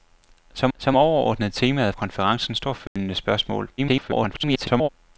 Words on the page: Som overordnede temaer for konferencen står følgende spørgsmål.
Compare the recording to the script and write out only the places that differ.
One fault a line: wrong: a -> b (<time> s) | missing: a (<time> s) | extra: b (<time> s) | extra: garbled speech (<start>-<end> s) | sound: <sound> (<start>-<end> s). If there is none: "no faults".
extra: som (0.8 s)
missing: for (1.9 s)
sound: dropout (2.9-3.0 s)
extra: garbled speech (3.8-4.9 s)